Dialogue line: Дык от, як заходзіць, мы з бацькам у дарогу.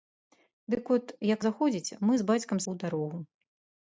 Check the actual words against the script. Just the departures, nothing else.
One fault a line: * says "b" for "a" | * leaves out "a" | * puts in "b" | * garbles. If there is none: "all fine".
all fine